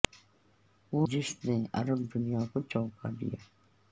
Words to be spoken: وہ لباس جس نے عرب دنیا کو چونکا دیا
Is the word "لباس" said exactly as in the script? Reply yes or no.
no